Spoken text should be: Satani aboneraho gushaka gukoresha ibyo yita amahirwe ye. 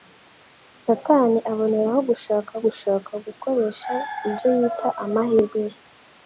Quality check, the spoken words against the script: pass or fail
fail